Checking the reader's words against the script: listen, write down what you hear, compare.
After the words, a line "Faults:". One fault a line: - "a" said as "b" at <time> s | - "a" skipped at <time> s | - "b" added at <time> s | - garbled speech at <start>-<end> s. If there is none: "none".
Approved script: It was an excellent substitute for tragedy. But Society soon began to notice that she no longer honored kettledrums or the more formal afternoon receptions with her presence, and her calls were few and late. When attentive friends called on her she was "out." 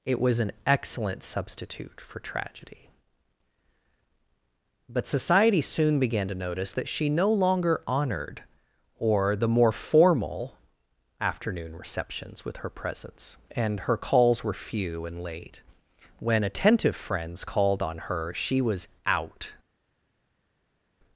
It was an excellent substitute for tragedy. But Society soon began to notice that she no longer honored or the more formal afternoon receptions with her presence, and her calls were few and late. When attentive friends called on her she was "out."
Faults:
- "kettledrums" skipped at 8.4 s